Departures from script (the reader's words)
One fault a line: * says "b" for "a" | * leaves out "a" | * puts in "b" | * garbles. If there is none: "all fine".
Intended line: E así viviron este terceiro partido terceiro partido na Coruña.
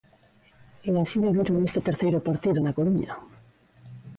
* leaves out "terceiro partido"